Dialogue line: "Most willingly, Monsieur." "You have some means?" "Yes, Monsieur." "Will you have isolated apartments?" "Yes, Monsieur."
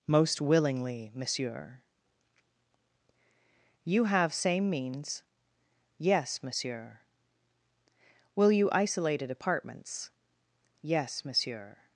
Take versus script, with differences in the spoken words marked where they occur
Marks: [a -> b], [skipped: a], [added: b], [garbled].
"Most willingly, Monsieur." "You have [some -> same] means?" "Yes, Monsieur." "Will you [skipped: have] isolated apartments?" "Yes, Monsieur."